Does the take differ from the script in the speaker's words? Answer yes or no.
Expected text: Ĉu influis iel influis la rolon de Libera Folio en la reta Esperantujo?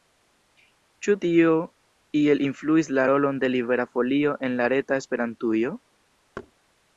yes